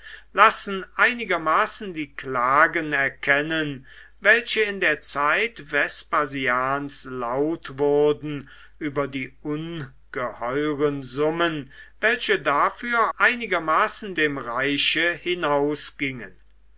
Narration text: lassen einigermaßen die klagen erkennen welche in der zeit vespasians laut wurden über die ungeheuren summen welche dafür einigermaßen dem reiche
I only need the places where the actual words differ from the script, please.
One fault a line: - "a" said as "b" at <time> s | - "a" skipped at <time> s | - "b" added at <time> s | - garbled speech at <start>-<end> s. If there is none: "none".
none